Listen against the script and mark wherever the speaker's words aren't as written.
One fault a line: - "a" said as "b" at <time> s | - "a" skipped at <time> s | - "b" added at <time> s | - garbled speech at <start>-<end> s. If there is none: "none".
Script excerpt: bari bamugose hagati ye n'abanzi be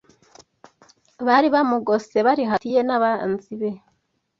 - "bari" added at 2.3 s